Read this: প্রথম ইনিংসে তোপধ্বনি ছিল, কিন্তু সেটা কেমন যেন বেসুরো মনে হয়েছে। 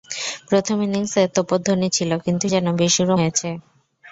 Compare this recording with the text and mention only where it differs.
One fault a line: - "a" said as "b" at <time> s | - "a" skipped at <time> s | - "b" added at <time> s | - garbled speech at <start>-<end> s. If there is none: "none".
- "সেটা কেমন" skipped at 2.5 s
- "মনে" skipped at 3.1 s